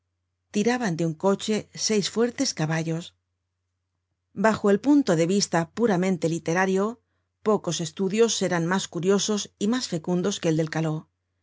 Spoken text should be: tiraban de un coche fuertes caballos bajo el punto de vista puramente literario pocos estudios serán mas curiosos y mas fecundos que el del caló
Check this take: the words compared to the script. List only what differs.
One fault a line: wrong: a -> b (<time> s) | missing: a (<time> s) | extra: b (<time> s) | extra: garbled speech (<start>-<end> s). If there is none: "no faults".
extra: seis (1.9 s)